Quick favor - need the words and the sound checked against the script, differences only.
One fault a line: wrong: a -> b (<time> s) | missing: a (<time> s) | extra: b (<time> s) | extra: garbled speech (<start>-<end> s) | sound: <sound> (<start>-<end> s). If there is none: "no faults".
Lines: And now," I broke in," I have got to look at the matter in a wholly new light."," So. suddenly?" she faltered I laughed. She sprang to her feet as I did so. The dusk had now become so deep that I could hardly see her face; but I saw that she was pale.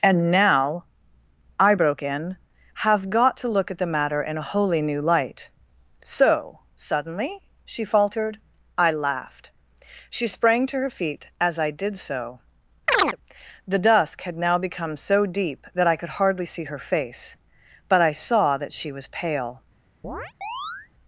missing: I (2.4 s)
sound: chirp (12.9-13.2 s)
sound: chirp (20.0-20.9 s)